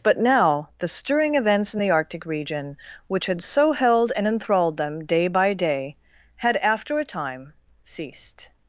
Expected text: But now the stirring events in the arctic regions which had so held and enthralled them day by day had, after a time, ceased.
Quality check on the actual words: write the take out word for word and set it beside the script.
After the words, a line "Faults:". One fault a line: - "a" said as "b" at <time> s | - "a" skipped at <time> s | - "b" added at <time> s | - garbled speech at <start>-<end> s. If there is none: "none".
But now the stirring events in the arctic region which had so held and enthralled them day by day had, after a time, ceased.
Faults:
- "regions" said as "region" at 2.3 s